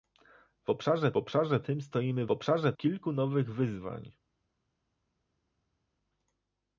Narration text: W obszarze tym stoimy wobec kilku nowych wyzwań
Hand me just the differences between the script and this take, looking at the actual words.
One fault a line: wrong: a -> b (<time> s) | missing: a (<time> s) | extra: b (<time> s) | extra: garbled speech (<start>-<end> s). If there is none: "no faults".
extra: obszarze (1.2 s)
wrong: wobec -> obszarze (2.3 s)